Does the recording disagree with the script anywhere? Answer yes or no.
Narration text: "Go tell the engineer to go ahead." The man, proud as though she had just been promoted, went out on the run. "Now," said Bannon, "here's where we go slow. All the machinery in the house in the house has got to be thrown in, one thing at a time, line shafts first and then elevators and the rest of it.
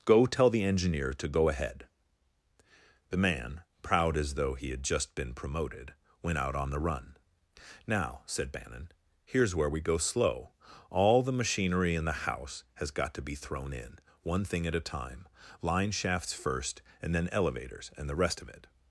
yes